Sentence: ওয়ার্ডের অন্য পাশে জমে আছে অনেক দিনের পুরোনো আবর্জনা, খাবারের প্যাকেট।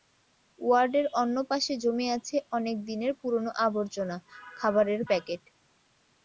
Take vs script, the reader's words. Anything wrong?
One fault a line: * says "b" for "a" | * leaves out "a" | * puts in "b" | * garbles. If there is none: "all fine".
all fine